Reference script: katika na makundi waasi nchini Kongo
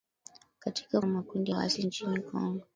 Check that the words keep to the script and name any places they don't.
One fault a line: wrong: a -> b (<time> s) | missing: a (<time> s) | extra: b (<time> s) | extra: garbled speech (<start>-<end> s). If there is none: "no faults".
no faults